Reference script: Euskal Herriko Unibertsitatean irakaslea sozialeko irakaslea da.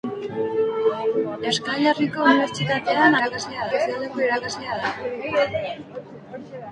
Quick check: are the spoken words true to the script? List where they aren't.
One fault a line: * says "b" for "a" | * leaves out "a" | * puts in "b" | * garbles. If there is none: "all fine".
all fine